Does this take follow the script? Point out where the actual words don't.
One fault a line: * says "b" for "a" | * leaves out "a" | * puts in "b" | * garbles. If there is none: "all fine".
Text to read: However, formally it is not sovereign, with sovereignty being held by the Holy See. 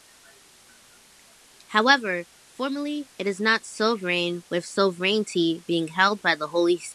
all fine